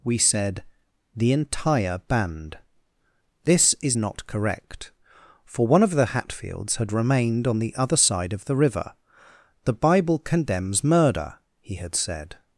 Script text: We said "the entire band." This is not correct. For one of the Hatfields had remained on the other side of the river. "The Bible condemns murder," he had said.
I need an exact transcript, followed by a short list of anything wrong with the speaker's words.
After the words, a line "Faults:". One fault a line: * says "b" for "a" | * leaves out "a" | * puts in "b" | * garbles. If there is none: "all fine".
We said "the entire band." This is not correct. For one of the Hatfields had remained on the other side of the river. "The Bible condemns murder," he had said.
Faults:
all fine